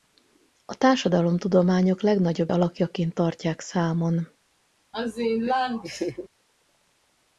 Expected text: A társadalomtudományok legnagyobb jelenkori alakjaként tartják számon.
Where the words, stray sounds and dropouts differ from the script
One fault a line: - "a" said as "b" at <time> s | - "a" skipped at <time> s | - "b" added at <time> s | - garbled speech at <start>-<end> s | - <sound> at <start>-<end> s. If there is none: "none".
- "jelenkori" skipped at 2.5 s
- laugh at 4.9-6.3 s